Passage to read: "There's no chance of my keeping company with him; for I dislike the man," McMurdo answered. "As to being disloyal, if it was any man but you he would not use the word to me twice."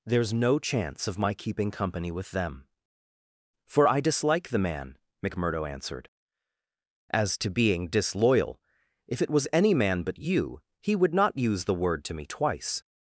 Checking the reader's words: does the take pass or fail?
fail